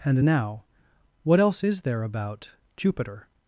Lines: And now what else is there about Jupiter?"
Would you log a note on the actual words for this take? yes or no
no